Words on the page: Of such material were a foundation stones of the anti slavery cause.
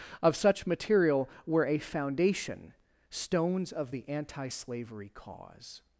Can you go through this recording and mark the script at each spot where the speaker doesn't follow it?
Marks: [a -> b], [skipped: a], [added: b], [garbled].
Of such material were a foundation stones of the anti slavery cause.